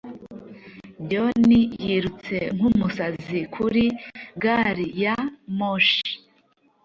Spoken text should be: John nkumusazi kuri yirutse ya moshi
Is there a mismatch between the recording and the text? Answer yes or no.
yes